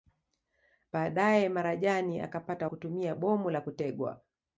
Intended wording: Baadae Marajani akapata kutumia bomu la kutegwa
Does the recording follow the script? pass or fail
pass